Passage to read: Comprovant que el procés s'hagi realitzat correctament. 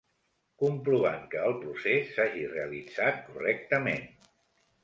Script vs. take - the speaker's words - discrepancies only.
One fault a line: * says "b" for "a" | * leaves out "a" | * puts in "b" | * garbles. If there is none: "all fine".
all fine